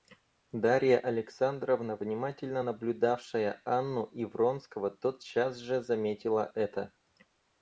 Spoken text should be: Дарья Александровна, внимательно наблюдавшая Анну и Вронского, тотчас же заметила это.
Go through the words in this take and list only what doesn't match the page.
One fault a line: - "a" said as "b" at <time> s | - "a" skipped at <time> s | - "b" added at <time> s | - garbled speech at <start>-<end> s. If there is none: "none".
none